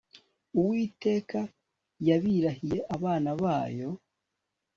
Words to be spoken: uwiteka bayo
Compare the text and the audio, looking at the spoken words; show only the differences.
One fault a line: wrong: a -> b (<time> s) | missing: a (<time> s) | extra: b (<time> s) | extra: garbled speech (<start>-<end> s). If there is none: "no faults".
extra: yabirahiye abana (2.1 s)